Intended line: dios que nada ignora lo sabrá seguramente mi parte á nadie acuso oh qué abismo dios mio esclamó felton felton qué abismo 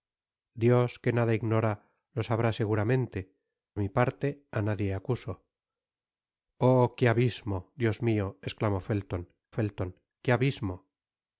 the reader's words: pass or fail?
pass